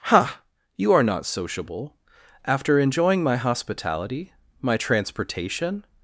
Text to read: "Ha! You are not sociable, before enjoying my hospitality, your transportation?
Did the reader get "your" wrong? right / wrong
wrong